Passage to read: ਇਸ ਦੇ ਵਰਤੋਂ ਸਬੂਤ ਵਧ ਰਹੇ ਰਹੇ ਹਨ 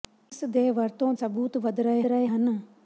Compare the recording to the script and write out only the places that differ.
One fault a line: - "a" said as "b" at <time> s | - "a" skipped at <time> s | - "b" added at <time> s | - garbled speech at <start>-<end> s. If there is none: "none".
none